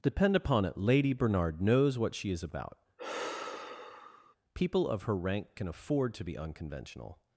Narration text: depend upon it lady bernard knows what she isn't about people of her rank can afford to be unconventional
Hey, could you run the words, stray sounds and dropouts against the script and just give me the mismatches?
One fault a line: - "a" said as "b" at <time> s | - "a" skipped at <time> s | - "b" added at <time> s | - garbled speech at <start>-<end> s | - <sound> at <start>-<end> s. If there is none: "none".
- "isn't" said as "is" at 2.3 s
- sigh at 3.0-4.4 s